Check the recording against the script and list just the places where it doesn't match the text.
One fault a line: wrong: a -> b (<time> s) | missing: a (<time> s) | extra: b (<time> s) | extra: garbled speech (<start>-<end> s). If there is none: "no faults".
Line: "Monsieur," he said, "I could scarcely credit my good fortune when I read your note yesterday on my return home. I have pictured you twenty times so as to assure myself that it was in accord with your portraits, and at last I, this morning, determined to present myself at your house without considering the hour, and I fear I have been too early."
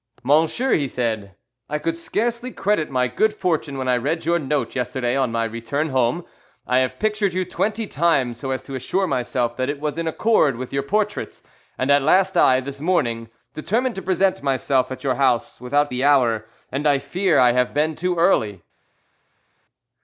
missing: considering (15.9 s)